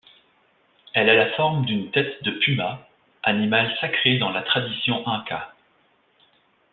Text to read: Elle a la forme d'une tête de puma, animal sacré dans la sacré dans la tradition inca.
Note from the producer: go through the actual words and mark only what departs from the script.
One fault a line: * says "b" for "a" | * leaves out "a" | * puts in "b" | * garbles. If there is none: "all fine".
* leaves out "sacré dans la"